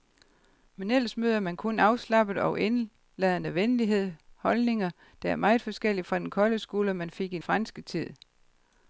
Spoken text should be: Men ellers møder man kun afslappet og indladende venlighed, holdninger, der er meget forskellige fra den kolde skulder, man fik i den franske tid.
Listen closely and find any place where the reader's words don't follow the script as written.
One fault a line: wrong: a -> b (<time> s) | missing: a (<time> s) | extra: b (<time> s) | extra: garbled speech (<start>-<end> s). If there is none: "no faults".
missing: den (7.4 s)